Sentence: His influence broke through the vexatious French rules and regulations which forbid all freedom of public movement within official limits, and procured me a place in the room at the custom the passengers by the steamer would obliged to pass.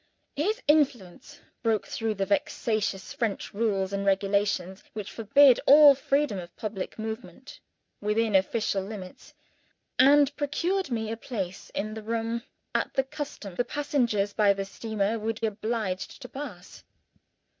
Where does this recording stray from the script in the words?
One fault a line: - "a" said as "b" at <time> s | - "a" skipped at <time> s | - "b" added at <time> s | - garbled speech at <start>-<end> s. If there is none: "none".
none